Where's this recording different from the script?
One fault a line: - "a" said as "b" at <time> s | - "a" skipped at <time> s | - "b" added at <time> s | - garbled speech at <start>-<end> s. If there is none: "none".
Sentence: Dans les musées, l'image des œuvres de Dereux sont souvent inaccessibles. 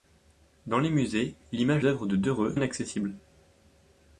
- "des" skipped at 1.9 s
- "sont souvent" skipped at 2.6 s